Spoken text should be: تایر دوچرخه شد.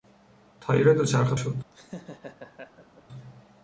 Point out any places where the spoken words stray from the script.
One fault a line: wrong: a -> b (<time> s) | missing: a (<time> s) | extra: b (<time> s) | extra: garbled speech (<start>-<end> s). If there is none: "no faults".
no faults